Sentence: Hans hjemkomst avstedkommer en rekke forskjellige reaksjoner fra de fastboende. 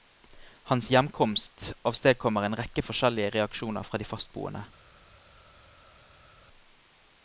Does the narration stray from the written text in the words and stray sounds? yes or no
no